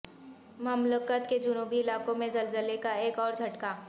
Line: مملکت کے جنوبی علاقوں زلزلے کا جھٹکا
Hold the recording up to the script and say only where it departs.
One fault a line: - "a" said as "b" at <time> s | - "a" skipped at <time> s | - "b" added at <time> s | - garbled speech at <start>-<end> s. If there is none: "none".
- "میں" added at 2.1 s
- "ایک اور" added at 3.0 s